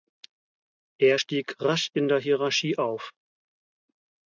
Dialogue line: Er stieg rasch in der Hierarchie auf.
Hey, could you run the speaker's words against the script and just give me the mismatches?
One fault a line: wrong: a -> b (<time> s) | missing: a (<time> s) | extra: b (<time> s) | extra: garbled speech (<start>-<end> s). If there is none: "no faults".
no faults